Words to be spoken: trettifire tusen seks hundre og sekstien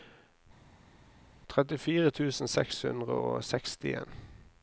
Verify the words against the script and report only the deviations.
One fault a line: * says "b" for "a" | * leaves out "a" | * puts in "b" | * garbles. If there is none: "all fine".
all fine